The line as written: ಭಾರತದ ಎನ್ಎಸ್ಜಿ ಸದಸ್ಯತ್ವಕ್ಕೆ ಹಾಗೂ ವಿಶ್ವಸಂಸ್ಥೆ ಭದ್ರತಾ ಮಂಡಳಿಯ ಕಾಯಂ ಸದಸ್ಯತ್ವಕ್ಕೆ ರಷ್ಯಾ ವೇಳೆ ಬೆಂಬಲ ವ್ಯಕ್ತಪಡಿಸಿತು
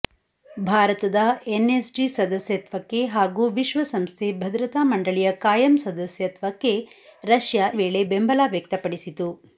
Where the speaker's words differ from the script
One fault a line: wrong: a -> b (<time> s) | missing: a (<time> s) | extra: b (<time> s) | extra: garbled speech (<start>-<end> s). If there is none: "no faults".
no faults